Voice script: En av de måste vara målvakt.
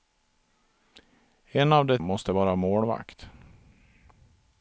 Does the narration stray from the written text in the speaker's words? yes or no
no